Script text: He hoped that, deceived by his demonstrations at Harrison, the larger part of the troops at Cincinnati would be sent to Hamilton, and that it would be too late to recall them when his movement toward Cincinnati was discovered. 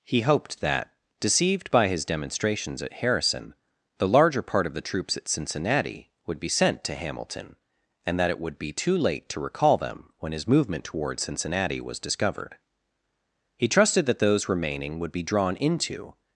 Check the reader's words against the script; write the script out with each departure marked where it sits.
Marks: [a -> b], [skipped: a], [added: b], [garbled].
He hoped that, deceived by his demonstrations at Harrison, the larger part of the troops at Cincinnati would be sent to Hamilton, and that it would be too late to recall them when his movement toward Cincinnati was discovered. [added: He trusted that those remaining would be drawn into]